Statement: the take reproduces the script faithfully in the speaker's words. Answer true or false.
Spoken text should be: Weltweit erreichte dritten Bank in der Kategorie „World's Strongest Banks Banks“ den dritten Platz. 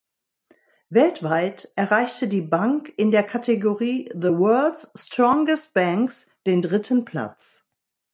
false